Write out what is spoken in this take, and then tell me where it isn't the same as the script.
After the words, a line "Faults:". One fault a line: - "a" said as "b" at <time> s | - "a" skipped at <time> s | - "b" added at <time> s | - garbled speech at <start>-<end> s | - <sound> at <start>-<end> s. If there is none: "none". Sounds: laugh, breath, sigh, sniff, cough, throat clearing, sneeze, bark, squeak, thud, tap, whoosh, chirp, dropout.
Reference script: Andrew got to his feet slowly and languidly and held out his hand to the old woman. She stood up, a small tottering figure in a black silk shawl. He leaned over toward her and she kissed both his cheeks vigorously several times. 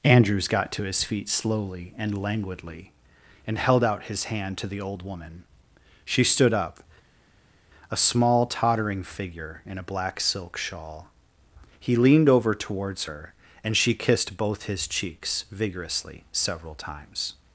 Andrews got to his feet slowly and languidly and held out his hand to the old woman. She stood up, a small tottering figure in a black silk shawl. He leaned over towards her and she kissed both his cheeks vigorously several times.
Faults:
- "Andrew" said as "Andrews" at 0.0 s
- "toward" said as "towards" at 12.5 s